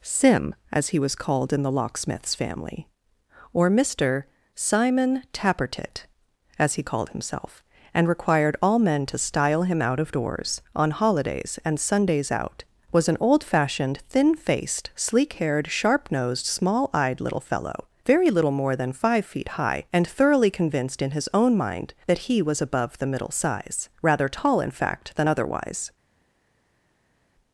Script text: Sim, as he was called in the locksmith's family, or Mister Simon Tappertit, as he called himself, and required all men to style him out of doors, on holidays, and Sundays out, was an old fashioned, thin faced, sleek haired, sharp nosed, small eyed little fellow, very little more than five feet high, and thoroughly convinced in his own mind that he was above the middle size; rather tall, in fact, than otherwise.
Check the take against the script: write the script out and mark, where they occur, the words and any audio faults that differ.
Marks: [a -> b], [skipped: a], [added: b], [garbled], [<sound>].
Sim, as he was called in the locksmith's family, or Mister Simon Tappertit, as he called himself, and required all men to style him out of doors, on holidays, and Sundays out, was an old fashioned, thin faced, sleek haired, sharp nosed, small eyed little fellow, very little more than five feet high, and thoroughly convinced in his own mind that he was above the middle size; rather tall, in fact, than otherwise.